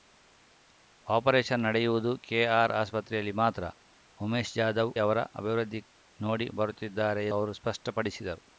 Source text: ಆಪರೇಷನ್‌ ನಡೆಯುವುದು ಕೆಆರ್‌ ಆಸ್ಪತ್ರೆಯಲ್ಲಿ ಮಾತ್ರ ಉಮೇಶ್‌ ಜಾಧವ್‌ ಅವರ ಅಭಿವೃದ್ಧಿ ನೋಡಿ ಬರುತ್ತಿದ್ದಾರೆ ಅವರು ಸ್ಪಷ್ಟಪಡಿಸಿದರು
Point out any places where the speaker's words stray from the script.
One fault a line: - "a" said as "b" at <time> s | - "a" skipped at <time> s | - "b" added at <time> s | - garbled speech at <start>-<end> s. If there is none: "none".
none